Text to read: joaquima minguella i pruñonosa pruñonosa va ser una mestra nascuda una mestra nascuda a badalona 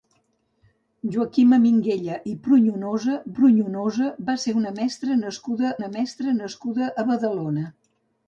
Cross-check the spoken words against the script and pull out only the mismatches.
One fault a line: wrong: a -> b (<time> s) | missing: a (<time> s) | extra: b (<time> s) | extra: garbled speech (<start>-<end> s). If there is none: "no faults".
no faults